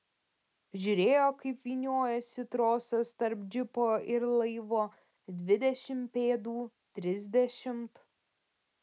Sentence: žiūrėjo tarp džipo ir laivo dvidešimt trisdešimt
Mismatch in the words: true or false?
true